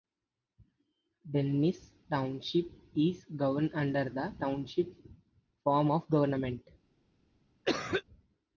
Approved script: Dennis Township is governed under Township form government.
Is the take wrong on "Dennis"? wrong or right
right